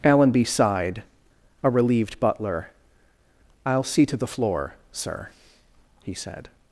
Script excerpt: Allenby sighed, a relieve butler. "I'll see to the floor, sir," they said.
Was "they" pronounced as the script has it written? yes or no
no